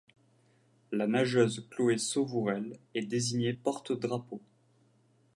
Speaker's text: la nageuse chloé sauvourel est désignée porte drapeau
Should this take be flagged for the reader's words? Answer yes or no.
no